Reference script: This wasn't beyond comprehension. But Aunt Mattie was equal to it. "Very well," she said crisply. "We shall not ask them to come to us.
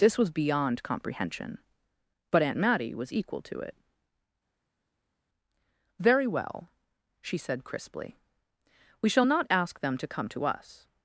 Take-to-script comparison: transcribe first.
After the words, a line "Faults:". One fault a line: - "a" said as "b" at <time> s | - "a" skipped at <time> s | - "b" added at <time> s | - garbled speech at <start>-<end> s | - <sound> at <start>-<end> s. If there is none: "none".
This was beyond comprehension. But Aunt Mattie was equal to it. "Very well," she said crisply. "We shall not ask them to come to us.
Faults:
- "wasn't" said as "was" at 0.2 s